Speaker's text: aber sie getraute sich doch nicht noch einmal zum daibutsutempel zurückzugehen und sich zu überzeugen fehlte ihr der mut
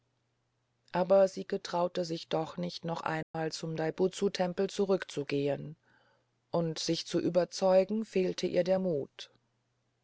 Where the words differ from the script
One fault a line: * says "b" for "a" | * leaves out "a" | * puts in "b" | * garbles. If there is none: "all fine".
all fine